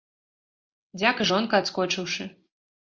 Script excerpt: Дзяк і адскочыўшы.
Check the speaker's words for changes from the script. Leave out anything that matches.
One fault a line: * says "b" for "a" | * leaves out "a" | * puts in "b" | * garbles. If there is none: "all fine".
* puts in "жонка"